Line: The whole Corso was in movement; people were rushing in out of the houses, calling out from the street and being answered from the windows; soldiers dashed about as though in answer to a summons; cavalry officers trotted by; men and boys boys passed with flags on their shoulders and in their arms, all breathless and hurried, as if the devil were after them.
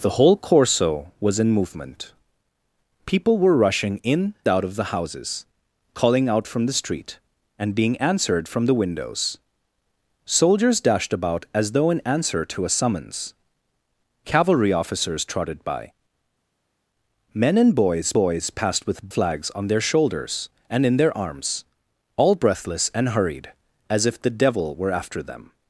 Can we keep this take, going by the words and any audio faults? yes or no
yes